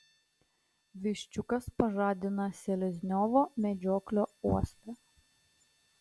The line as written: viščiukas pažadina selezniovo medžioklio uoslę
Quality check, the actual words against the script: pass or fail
pass